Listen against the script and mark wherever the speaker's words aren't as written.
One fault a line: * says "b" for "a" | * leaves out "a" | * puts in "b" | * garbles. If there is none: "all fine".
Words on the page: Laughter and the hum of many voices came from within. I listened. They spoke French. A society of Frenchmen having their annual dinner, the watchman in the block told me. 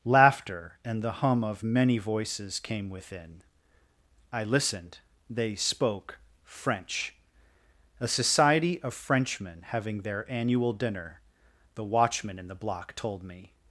* leaves out "from"